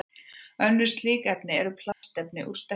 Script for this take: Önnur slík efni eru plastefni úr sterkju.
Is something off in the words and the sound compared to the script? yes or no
yes